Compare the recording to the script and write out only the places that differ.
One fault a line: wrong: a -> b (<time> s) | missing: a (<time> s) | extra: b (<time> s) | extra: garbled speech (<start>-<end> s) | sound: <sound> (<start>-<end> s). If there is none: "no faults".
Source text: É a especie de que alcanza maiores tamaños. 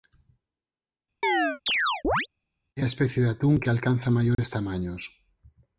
sound: chirp (1.2-2.3 s)
extra: atún (3.3 s)
sound: dropout (4.3-4.4 s)